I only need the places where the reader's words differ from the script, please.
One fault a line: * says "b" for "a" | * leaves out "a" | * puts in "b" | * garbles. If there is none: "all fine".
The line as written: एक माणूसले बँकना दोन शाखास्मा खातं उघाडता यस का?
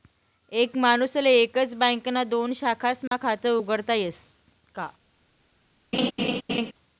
* puts in "एकच"